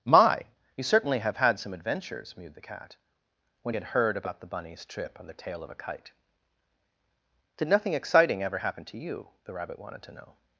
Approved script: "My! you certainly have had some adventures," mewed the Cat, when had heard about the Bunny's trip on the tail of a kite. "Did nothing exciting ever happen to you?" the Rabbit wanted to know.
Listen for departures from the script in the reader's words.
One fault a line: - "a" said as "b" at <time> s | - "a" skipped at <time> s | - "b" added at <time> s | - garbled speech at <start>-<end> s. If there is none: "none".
none